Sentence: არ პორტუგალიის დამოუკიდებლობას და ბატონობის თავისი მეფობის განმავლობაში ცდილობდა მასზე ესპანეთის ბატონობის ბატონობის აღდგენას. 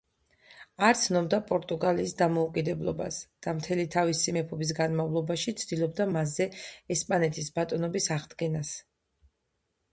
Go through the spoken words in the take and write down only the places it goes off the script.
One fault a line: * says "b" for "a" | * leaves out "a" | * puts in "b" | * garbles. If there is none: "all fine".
* puts in "ცნობდა"
* says "მთელი" for "ბატონობის"
* leaves out "ბატონობის"